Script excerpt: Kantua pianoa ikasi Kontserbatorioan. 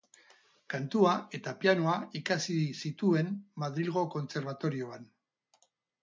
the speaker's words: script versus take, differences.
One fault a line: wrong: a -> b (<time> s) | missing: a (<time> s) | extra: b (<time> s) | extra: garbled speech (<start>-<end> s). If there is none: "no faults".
extra: eta (1.4 s)
extra: zituen Madrilgo (2.9 s)